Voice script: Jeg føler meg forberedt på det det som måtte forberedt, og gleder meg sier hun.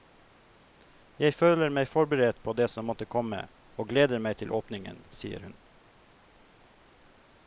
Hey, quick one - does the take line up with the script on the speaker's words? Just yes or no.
no